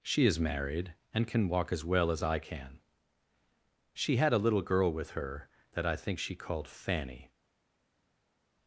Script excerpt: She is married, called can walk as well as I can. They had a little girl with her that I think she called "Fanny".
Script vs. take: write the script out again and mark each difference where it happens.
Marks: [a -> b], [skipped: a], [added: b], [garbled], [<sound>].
She is married, [called -> and] can walk as well as I can. [They -> She] had a little girl with her that I think she called "Fanny".